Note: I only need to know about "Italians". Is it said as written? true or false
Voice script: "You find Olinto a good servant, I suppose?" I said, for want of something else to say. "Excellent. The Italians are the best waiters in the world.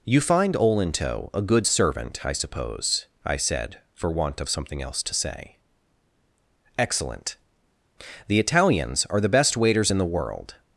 true